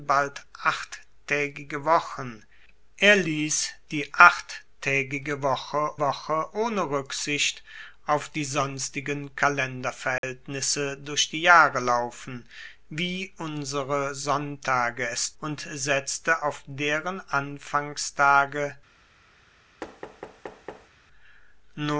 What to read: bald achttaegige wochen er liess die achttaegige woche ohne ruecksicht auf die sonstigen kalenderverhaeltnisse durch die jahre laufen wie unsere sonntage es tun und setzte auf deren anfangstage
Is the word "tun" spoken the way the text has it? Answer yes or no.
no